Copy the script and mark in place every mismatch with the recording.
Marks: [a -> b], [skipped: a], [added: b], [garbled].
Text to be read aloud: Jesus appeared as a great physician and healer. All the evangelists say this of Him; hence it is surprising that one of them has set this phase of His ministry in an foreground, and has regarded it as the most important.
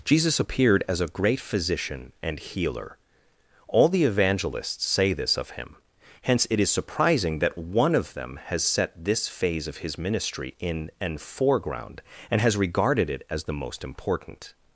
Jesus appeared as a great physician and healer. All the evangelists say this of Him; hence it is surprising that one of them has set this phase of His ministry in an foreground, and has regarded it as the most important.